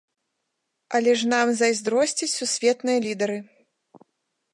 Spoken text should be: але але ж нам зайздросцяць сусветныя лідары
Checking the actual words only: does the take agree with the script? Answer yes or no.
no